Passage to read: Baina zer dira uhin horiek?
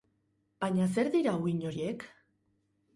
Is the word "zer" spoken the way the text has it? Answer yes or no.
yes